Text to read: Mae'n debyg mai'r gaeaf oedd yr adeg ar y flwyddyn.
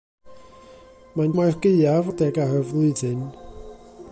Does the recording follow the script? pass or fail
fail